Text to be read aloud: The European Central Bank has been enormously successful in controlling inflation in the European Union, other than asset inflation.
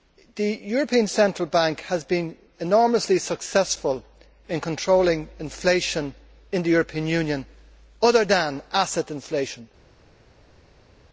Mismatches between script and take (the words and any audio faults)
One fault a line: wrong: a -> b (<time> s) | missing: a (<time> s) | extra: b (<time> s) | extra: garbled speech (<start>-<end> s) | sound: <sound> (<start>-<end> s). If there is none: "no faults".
no faults